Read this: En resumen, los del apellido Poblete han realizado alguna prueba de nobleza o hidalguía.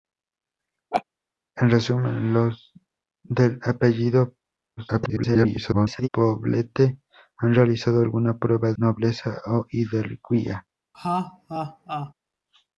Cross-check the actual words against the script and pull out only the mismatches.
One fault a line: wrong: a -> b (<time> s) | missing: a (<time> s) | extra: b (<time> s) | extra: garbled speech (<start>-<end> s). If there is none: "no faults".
extra: garbled speech (4.8-6.1 s)
missing: de (8.7 s)